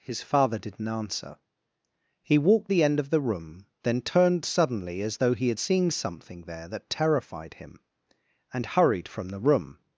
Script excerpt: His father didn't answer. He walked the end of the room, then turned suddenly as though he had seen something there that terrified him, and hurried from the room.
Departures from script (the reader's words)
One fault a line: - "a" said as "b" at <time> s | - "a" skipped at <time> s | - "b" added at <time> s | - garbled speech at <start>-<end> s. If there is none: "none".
none